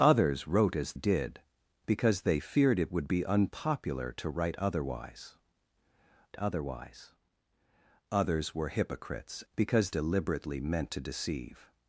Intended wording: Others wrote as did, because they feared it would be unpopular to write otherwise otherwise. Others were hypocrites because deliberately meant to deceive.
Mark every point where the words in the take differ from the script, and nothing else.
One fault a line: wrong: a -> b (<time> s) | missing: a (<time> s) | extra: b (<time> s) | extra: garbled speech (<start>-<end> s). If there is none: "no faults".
no faults